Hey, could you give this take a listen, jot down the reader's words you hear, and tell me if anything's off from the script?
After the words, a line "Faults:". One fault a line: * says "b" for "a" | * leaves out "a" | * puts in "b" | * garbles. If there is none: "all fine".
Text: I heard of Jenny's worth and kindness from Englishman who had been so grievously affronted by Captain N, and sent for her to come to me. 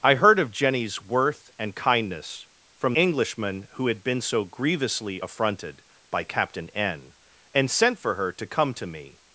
I heard of Jenny's worth and kindness from Englishman who had been so grievously affronted by Captain N, and sent for her to come to me.
Faults:
all fine